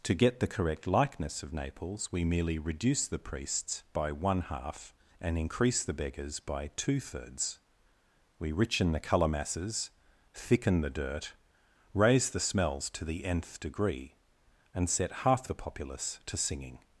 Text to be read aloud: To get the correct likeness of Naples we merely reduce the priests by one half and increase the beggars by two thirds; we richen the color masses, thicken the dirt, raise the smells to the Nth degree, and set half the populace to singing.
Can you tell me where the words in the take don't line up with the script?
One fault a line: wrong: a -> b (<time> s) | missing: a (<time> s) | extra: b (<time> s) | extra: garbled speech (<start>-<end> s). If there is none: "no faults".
no faults